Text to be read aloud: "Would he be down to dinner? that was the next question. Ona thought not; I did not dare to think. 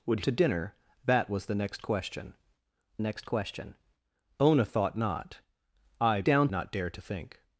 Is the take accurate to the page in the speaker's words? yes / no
no